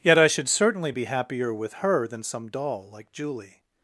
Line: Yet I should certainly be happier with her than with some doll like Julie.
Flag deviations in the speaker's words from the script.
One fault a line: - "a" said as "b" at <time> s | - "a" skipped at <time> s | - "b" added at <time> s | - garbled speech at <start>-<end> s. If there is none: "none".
- "with" skipped at 2.2 s